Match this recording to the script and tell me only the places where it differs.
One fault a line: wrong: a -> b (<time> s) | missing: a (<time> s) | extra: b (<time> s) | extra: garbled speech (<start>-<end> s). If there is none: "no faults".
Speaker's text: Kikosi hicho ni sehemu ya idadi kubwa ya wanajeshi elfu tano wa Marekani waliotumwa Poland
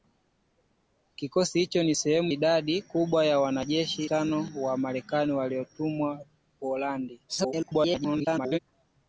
missing: ya (2.3 s)
missing: elfu (4.0 s)
extra: garbled speech (7.3-8.6 s)